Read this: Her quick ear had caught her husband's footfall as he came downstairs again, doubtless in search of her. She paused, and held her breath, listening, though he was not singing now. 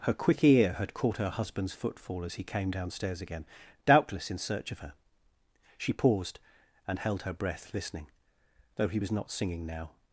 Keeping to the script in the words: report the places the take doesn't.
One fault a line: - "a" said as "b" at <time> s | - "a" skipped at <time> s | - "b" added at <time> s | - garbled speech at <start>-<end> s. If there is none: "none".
none